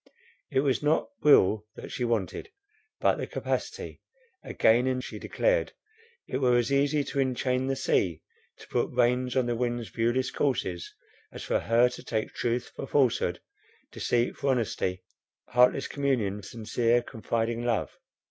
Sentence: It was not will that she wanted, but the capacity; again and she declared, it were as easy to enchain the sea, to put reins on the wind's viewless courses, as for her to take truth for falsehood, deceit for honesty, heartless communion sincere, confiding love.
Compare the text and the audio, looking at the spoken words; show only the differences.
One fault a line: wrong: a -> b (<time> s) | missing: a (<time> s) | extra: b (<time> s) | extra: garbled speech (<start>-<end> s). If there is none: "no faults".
no faults